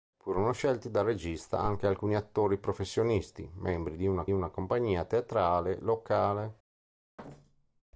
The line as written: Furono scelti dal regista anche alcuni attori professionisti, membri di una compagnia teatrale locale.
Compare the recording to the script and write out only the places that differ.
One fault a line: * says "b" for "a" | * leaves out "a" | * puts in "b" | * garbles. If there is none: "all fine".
* puts in "una"